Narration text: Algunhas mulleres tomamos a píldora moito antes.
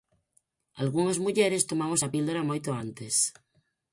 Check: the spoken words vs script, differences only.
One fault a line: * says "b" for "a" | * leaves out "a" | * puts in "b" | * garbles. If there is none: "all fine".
all fine